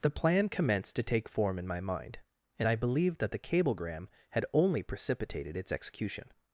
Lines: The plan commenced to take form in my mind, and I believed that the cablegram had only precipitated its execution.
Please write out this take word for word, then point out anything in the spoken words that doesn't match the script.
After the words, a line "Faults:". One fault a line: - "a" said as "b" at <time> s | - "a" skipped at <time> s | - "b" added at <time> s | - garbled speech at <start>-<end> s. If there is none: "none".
The plan commenced to take form in my mind, and I believed that the cablegram had only precipitated its execution.
Faults:
none